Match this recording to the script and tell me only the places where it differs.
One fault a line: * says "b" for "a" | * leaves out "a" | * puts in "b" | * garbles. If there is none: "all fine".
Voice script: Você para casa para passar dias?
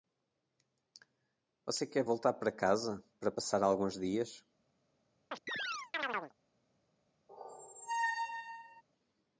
* puts in "quer voltar"
* puts in "alguns"